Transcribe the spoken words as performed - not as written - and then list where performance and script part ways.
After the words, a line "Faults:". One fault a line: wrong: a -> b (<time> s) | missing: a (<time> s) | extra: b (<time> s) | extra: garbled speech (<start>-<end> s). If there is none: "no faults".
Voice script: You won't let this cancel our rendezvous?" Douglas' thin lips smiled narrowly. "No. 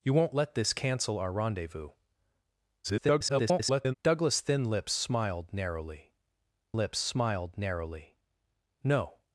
You won't let this cancel our rendezvous?" [garbled] Douglas' thin lips smiled narrowly lips smiled narrowly. "No.
Faults:
extra: garbled speech (2.8-3.9 s)
extra: lips smiled narrowly (6.7 s)